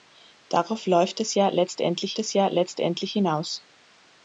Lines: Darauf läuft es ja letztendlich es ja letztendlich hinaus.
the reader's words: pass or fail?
pass